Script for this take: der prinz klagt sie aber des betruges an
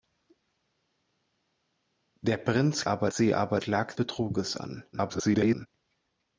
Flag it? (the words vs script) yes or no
yes